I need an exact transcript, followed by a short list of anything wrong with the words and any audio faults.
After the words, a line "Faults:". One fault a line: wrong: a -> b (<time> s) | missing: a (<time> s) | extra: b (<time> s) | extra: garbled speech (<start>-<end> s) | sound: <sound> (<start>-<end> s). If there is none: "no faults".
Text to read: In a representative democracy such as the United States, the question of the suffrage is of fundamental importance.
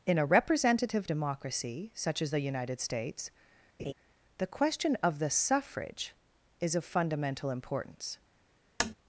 In a representative democracy such as the United States, the question of the suffrage is of fundamental importance.
Faults:
sound: laugh (3.8-3.9 s)
sound: tap (8.8-8.9 s)